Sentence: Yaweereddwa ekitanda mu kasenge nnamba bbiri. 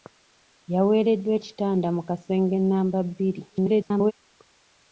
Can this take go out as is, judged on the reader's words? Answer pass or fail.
fail